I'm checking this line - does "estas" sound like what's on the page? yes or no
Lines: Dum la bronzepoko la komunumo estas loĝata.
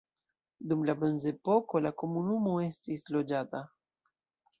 no